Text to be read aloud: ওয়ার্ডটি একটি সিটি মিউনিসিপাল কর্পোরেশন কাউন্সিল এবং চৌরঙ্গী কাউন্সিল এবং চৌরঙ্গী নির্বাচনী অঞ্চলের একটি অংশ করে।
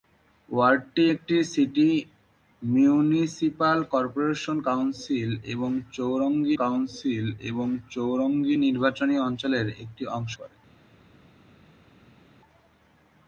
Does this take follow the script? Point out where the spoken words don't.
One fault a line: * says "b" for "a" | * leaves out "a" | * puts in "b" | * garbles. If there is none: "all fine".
all fine